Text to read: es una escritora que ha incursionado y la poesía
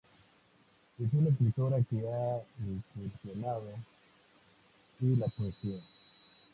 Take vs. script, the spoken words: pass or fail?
pass